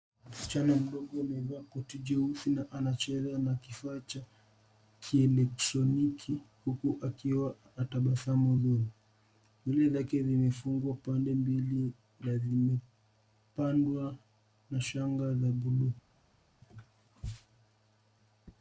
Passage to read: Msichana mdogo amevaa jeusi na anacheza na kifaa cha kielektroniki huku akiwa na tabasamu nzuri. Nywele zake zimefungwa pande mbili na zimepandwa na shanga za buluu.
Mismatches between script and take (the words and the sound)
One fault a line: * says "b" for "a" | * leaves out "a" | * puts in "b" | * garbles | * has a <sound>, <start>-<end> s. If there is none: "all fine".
* puts in "koti"